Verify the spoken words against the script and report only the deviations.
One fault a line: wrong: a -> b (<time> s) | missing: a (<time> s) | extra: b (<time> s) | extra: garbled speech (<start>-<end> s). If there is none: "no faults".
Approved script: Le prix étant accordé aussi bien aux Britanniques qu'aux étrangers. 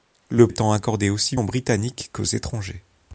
missing: prix (0.5 s)
missing: bien (1.4 s)